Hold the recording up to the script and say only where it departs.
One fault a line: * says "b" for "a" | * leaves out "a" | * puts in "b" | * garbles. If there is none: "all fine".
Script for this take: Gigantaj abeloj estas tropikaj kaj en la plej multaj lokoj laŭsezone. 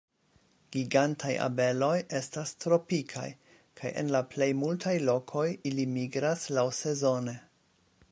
* puts in "ili migras"